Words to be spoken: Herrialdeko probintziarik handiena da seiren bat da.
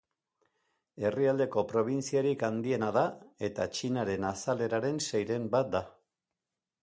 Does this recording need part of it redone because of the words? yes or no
yes